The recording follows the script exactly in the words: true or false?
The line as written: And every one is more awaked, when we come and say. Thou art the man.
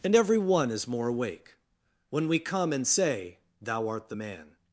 false